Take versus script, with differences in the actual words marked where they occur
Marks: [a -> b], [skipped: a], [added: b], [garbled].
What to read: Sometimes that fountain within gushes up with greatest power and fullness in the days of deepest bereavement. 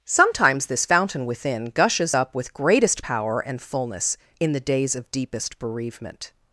Sometimes [that -> this] fountain within gushes up with greatest power and fullness in the days of deepest bereavement.